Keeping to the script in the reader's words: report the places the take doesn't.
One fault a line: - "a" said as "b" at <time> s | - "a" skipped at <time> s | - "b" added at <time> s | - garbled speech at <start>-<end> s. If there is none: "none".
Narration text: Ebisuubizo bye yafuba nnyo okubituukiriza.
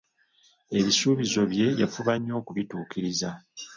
none